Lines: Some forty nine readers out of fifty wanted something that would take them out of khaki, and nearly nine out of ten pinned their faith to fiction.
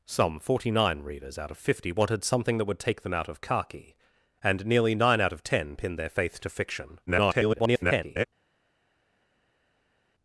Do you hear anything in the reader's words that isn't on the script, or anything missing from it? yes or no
yes